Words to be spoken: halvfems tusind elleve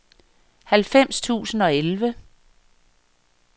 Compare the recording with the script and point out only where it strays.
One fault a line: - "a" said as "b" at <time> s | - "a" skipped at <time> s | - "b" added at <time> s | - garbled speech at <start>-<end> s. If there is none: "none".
- "og" added at 1.6 s